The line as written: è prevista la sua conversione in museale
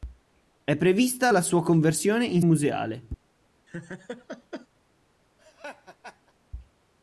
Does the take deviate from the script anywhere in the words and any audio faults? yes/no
yes